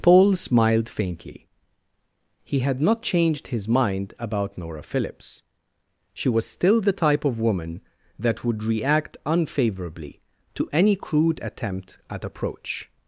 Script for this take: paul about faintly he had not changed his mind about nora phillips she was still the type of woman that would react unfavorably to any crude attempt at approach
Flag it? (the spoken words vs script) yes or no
yes